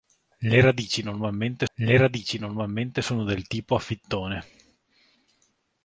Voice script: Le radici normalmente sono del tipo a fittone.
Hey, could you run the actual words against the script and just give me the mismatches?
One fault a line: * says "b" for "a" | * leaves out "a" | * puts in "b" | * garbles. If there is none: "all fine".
* puts in "le radici normalmente"